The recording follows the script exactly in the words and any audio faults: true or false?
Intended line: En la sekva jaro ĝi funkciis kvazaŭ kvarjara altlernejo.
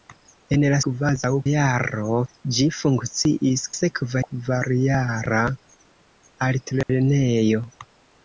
false